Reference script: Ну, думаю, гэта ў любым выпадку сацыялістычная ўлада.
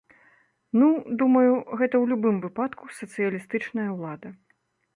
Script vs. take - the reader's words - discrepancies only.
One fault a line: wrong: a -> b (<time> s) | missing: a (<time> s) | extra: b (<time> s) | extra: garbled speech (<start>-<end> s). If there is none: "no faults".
no faults